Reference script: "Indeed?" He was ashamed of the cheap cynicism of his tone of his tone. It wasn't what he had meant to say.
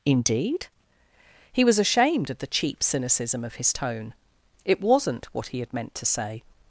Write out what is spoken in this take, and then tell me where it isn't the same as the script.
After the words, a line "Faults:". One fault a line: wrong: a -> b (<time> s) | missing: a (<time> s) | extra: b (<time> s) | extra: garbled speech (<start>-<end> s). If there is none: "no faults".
"Indeed?" He was ashamed of the cheap cynicism of his tone. It wasn't what he had meant to say.
Faults:
missing: of his tone (4.1 s)